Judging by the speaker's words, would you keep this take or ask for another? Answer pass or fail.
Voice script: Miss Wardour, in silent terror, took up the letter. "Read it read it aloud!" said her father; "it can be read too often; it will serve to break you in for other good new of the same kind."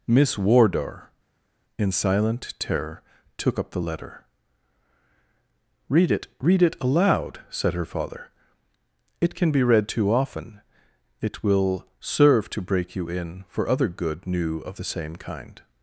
pass